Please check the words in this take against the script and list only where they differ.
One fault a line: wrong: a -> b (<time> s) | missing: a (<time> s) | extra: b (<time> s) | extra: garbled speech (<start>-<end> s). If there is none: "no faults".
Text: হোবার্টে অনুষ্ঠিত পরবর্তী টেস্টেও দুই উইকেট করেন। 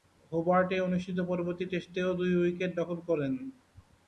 extra: দখল (2.8 s)